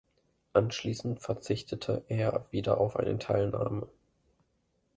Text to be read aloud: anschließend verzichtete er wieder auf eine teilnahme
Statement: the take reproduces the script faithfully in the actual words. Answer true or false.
true